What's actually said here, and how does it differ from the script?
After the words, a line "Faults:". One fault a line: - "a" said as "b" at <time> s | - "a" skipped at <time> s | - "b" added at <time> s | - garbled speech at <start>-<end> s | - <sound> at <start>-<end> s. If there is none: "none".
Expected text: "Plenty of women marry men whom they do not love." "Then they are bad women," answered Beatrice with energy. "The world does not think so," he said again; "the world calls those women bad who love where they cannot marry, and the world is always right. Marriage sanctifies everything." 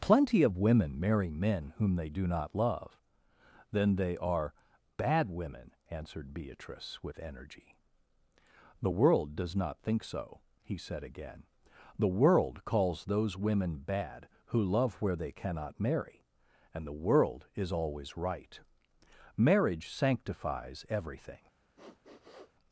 "Plenty of women marry men whom they do not love." "Then they are bad women," answered Beatrice with energy. "The world does not think so," he said again; "the world calls those women bad who love where they cannot marry, and the world is always right. Marriage sanctifies everything."
Faults:
- sniff at 21.8-22.5 s